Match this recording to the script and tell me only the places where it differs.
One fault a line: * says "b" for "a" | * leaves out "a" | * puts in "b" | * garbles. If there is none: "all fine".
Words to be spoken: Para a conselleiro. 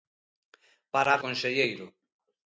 all fine